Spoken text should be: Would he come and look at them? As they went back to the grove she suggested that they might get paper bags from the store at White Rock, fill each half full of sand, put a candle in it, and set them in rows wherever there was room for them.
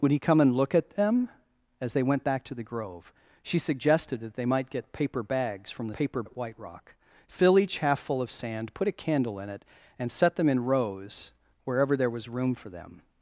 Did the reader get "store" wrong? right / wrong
wrong